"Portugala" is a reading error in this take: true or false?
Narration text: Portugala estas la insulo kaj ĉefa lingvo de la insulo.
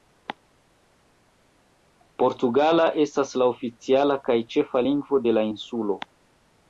false